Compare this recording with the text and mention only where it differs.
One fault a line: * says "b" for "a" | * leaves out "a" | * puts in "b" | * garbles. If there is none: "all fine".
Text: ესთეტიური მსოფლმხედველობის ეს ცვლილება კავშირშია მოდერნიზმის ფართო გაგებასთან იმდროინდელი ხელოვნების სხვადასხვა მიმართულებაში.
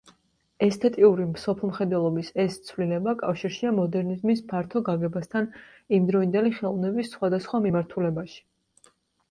all fine